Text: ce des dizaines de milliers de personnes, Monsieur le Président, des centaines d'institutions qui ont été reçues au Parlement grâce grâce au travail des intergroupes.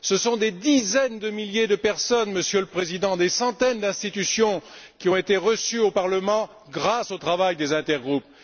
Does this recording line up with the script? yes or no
no